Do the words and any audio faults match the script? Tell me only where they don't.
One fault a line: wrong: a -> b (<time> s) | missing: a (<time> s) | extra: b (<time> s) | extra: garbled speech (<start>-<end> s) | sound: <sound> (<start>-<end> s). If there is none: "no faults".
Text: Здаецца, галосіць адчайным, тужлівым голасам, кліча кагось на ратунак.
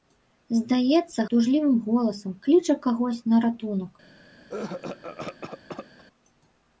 missing: галосіць адчайным (1.2 s)
sound: cough (4.5-6.0 s)